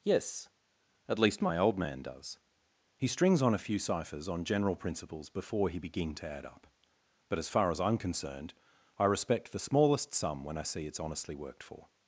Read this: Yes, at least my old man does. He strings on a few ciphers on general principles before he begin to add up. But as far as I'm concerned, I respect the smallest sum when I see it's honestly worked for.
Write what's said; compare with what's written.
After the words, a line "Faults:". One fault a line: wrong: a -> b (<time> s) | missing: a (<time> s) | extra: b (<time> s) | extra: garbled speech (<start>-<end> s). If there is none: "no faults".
Yes, at least my old man does. He strings on a few ciphers on general principles before he begin to add up. But as far as I'm concerned, I respect the smallest sum when I see it's honestly worked for.
Faults:
no faults